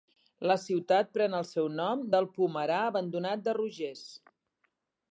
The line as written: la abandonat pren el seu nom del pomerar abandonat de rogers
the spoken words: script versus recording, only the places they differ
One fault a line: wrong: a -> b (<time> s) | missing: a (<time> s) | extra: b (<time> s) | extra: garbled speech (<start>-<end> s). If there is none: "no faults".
wrong: abandonat -> ciutat (0.6 s)